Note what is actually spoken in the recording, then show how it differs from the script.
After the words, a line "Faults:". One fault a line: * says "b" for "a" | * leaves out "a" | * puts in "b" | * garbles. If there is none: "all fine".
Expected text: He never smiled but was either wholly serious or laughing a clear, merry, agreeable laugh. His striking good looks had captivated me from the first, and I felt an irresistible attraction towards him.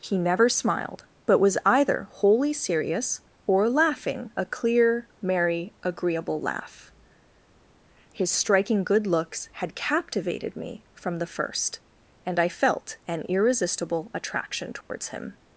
He never smiled but was either wholly serious or laughing a clear, merry, agreeable laugh. His striking good looks had captivated me from the first, and I felt an irresistible attraction towards him.
Faults:
all fine